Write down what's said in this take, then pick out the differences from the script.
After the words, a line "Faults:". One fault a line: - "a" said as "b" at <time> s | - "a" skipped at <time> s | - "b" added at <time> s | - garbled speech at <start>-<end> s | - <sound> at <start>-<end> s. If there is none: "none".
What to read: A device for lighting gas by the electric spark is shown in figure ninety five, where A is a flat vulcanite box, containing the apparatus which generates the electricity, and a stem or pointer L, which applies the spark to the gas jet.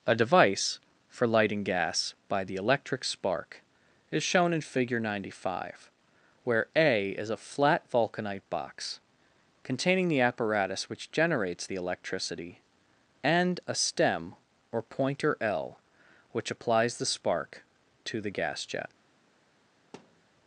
A device for lighting gas by the electric spark is shown in figure ninety five, where A is a flat vulcanite box, containing the apparatus which generates the electricity, and a stem or pointer L, which applies the spark to the gas jet.
Faults:
- thud at 19.9-20.3 s